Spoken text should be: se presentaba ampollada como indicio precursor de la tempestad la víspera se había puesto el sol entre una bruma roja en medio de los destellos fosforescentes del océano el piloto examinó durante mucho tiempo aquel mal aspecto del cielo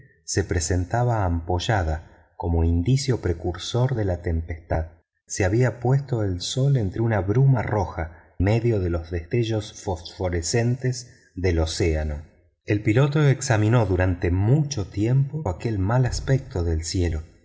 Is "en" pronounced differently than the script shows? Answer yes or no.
yes